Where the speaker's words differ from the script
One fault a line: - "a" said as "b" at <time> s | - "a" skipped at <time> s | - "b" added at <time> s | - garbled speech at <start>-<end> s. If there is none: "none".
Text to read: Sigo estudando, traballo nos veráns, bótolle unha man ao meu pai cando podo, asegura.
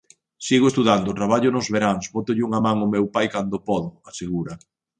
none